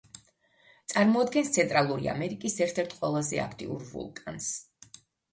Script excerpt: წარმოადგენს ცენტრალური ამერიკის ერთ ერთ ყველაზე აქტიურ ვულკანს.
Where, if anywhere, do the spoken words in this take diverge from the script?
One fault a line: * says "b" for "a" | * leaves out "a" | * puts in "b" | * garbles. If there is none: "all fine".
all fine